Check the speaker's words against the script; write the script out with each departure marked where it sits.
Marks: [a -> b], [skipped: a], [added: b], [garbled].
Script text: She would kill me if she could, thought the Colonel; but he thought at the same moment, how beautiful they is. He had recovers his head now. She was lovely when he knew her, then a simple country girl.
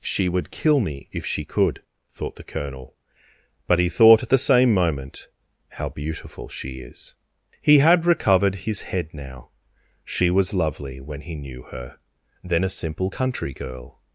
She would kill me if she could, thought the Colonel; but he thought at the same moment, how beautiful [they -> she] is. He had [recovers -> recovered] his head now. She was lovely when he knew her, then a simple country girl.